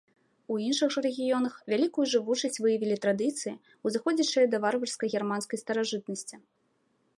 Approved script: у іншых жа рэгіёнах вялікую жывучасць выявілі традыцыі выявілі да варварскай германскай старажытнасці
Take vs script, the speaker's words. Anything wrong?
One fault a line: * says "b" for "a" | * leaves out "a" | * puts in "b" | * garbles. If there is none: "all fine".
* says "узыходзячыя" for "выявілі"